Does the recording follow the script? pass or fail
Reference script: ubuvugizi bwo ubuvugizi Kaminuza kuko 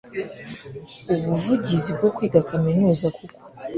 fail